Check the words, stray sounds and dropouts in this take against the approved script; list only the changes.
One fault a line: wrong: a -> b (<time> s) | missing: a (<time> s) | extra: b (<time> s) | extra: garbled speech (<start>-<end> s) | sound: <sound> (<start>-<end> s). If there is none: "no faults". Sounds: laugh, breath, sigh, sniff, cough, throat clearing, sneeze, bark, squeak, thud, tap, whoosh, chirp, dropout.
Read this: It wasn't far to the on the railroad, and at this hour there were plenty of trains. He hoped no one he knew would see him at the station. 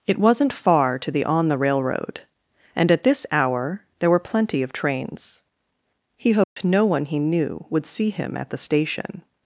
sound: dropout (6.4-6.6 s)